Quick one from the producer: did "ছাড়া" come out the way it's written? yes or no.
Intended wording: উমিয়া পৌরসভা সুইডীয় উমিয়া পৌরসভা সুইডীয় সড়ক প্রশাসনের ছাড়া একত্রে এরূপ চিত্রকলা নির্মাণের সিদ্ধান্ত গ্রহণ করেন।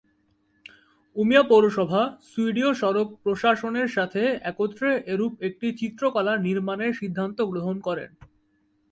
no